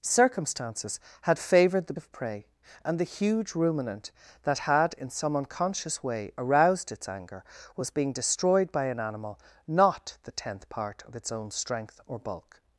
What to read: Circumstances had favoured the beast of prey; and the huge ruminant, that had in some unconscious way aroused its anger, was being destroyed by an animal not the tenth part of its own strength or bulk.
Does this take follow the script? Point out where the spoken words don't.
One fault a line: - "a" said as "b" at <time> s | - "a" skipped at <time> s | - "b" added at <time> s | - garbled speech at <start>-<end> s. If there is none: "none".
- "beast" skipped at 1.9 s